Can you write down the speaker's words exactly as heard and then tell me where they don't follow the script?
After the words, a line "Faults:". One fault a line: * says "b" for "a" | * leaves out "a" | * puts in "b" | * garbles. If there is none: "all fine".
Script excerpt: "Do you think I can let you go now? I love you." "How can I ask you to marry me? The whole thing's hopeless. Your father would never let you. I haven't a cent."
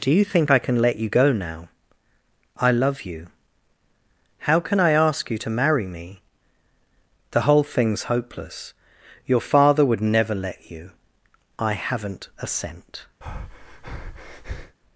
"Do you think I can let you go now? I love you." "How can I ask you to marry me? The whole thing's hopeless. Your father would never let you. I haven't a cent."
Faults:
all fine